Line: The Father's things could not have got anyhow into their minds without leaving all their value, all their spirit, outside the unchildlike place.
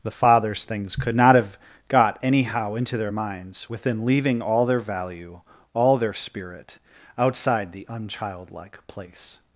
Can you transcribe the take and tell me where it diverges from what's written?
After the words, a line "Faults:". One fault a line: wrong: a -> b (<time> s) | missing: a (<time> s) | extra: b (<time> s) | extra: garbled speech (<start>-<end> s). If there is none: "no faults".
The Father's things could not have got anyhow into their minds within leaving all their value, all their spirit, outside the unchildlike place.
Faults:
wrong: without -> within (3.7 s)